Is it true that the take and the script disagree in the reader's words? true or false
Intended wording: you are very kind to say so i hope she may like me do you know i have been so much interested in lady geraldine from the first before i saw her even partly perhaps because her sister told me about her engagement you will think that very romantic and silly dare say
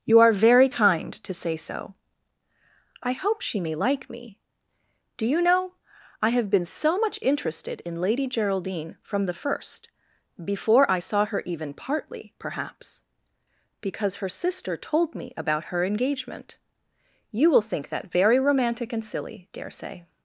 false